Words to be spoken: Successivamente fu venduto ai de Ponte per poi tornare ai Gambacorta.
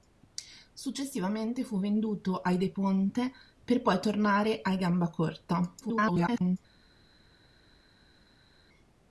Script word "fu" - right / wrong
right